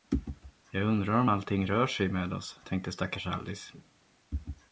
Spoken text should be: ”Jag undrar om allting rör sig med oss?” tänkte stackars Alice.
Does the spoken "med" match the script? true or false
true